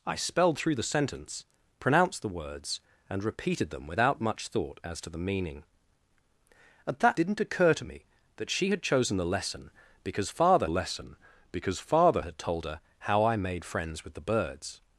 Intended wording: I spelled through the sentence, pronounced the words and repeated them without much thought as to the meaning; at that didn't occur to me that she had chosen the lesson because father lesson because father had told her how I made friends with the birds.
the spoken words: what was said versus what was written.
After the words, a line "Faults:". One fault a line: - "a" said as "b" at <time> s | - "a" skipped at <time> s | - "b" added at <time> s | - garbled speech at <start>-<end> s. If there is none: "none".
I spelled through the sentence, pronounced the words and repeated them without much thought as to the meaning; at that didn't occur to me that she had chosen the lesson because father lesson because father had told her how I made friends with the birds.
Faults:
none